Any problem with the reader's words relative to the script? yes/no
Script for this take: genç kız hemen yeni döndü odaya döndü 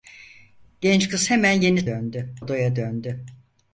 no